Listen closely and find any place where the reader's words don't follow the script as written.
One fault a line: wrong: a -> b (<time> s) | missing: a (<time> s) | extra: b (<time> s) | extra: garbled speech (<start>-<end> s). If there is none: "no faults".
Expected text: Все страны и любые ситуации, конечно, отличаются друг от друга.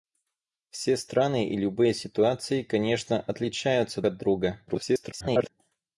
missing: друг (4.0 s)
extra: garbled speech (4.7-5.5 s)